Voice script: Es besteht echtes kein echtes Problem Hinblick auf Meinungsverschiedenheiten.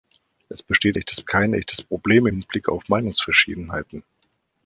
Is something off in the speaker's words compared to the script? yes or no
no